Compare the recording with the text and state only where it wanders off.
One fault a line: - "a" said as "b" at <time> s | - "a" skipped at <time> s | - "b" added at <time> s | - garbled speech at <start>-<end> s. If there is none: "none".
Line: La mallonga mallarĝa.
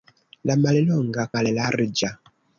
none